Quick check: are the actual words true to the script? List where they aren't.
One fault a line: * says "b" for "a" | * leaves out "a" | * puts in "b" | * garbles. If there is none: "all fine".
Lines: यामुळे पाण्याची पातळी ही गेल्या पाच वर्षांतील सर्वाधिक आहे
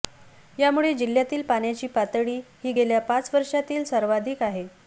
* puts in "जिल्ह्यातील"